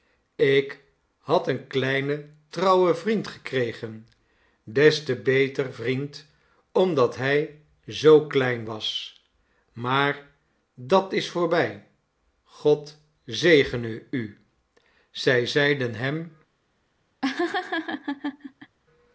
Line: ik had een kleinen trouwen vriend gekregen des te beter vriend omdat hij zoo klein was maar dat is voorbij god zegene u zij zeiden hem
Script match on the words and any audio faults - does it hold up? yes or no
no